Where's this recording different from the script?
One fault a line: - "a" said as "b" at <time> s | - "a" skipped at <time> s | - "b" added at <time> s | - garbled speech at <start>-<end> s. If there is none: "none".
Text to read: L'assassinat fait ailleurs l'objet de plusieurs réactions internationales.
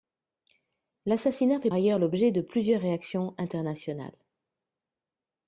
none